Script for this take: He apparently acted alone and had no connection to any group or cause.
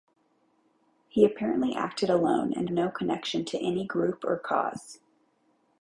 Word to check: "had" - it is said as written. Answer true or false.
false